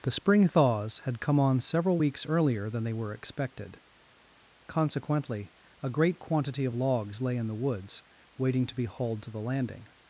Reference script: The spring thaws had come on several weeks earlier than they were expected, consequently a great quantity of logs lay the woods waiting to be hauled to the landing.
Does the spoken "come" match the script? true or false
true